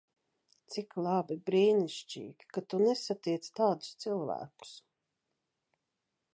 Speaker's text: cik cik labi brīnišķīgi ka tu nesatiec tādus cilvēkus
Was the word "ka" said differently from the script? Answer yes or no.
no